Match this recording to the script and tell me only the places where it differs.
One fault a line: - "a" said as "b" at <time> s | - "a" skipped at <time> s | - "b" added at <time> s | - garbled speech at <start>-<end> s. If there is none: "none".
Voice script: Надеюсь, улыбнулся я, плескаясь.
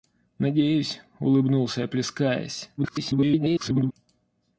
- garbled speech at 2.8-3.9 s